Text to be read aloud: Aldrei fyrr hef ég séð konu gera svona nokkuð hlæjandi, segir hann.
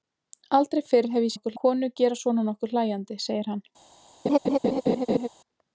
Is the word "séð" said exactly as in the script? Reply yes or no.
no